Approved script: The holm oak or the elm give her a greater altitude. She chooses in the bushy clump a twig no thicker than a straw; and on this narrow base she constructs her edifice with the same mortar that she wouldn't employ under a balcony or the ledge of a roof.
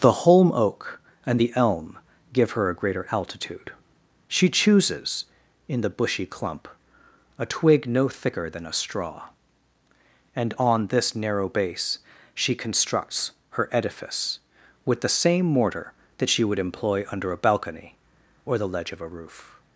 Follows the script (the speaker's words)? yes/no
no